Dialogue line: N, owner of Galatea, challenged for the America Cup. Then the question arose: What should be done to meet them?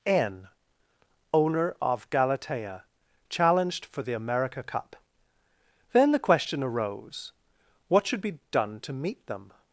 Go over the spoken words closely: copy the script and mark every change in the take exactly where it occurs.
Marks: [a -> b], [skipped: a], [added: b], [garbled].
N, owner of Galatea, challenged for the America Cup. Then the question arose: What should be done to meet them?